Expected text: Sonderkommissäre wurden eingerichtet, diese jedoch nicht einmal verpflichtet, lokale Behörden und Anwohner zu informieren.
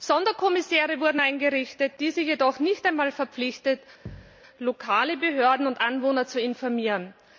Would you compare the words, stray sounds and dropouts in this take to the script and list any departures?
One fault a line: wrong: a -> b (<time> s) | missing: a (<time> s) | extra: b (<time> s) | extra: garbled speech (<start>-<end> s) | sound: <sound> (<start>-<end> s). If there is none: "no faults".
sound: thud (4.1-4.4 s)